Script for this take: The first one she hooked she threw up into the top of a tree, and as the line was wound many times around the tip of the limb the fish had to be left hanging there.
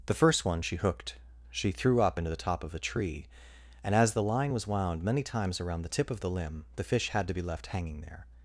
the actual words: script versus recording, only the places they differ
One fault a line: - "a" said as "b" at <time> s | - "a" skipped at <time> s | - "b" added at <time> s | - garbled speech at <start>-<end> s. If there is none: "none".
none